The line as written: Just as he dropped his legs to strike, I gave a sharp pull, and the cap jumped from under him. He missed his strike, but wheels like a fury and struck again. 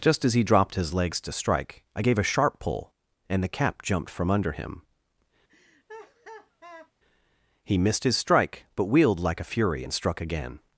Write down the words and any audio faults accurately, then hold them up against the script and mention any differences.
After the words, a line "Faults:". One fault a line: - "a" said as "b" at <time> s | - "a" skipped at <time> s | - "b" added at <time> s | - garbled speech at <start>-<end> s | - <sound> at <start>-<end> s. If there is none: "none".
Just as he dropped his legs to strike, I gave a sharp pull, and the cap jumped from under him. He missed his strike, but wheeled like a fury and struck again.
Faults:
- laugh at 5.5-6.9 s
- "wheels" said as "wheeled" at 8.9 s